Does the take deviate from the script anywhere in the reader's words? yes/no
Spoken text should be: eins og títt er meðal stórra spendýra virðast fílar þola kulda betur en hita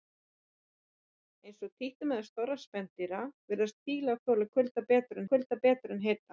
yes